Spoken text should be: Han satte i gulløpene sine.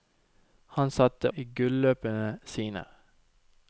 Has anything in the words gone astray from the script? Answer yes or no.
no